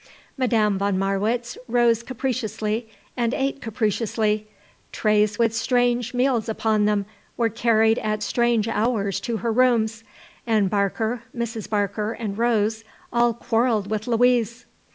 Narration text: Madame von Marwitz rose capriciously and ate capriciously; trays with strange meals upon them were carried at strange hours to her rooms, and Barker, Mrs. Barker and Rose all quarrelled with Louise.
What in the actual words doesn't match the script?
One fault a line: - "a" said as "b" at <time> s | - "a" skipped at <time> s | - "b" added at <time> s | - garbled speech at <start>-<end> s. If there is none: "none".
none